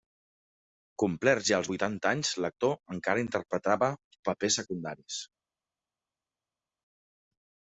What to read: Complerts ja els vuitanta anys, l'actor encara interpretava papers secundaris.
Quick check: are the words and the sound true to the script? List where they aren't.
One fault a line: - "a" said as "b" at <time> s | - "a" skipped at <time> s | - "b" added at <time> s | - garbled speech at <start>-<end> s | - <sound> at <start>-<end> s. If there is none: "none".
none